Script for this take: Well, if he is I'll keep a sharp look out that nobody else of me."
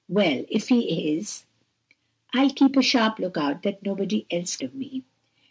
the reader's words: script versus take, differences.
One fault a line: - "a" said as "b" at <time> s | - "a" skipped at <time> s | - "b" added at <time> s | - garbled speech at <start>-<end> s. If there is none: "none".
none